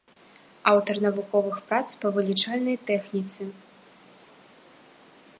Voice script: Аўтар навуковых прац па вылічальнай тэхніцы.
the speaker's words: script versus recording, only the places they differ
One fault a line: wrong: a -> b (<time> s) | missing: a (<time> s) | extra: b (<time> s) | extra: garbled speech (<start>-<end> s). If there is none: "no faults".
no faults